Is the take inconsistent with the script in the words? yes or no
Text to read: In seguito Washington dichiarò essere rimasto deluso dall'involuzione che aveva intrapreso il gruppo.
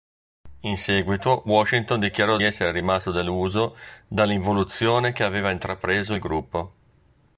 no